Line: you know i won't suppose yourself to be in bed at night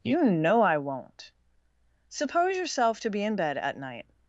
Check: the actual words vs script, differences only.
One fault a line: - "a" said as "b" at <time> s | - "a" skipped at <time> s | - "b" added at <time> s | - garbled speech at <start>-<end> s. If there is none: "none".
none